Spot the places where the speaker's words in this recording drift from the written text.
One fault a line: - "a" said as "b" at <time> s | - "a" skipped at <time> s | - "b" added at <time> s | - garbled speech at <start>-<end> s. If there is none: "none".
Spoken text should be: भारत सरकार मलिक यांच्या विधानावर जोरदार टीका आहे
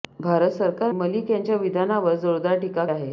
none